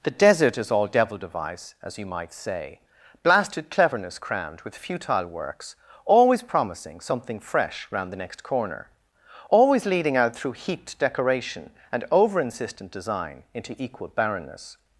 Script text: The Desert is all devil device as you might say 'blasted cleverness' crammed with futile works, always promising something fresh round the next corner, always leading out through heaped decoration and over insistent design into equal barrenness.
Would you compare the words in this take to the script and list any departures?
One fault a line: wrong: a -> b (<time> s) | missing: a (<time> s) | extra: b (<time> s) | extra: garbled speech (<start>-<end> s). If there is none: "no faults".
no faults